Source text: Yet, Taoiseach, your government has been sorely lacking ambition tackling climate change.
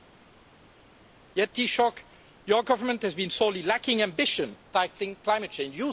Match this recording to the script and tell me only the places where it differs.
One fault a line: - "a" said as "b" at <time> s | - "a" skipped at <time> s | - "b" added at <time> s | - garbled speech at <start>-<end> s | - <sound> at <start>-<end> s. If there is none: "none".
none